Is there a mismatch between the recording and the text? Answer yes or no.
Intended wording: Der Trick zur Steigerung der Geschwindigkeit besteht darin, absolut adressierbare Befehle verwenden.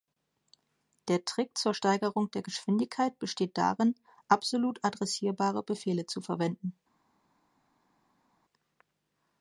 yes